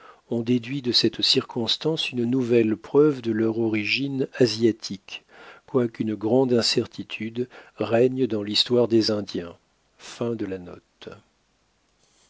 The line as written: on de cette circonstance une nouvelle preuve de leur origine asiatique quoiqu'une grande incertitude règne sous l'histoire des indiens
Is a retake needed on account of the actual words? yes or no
yes